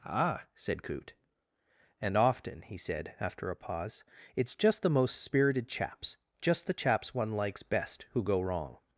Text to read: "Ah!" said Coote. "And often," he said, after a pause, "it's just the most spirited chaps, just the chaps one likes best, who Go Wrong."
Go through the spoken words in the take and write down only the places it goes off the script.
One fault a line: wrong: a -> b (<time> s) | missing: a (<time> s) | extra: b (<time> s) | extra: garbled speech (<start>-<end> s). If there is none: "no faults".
no faults